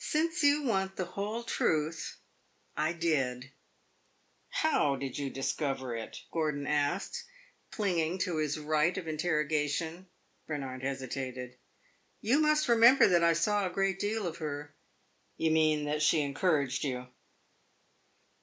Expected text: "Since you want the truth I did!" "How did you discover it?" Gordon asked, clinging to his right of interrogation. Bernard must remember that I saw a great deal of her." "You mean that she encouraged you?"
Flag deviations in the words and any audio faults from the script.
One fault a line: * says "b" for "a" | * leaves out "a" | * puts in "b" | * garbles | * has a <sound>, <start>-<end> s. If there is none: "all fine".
* puts in "whole"
* puts in "hesitated You"